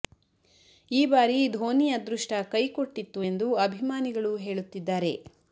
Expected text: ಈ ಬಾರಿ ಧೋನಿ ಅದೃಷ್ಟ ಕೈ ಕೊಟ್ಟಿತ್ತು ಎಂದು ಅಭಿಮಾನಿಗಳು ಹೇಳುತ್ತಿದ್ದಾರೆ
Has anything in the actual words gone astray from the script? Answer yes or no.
no